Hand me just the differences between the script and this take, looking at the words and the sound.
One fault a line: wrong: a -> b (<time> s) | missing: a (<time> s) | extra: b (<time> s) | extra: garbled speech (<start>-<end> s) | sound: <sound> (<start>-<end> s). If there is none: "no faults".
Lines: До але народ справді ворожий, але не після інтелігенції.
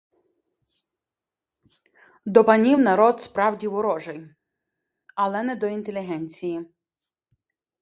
wrong: але -> панів (2.4 s)
wrong: після -> до (5.5 s)